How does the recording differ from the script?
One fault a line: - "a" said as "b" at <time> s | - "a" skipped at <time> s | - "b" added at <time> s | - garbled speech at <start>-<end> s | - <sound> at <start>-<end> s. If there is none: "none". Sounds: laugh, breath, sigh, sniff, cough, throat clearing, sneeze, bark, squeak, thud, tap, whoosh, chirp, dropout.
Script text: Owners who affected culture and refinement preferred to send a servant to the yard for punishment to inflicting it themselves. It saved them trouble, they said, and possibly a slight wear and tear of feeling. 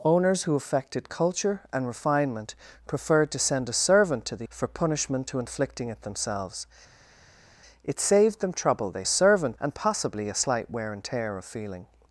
- "yard" skipped at 4.5 s
- "said" said as "servant" at 9.1 s